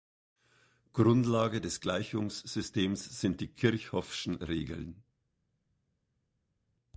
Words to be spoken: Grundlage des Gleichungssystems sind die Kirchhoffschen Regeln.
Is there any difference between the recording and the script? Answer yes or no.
no